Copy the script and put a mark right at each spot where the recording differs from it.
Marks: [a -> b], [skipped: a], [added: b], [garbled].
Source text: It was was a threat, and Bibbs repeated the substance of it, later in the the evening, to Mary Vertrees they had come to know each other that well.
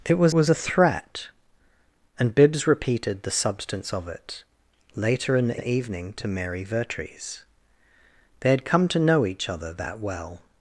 It was was a threat, and Bibbs repeated the substance of it, later in the the evening, to Mary Vertrees they had come to know each other that well.